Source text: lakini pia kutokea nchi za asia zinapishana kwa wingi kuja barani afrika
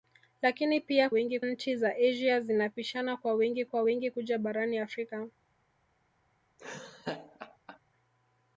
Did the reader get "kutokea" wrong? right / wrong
wrong